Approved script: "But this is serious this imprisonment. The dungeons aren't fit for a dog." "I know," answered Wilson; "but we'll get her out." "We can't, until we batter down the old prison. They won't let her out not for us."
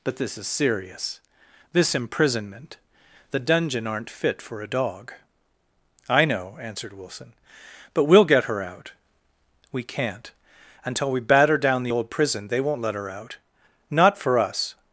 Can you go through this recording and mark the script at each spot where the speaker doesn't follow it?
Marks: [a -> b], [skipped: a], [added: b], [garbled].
"But this is serious this imprisonment. The [dungeons -> dungeon] aren't fit for a dog." "I know," answered Wilson; "but we'll get her out." "We can't, until we batter down the old prison. They won't let her out not for us."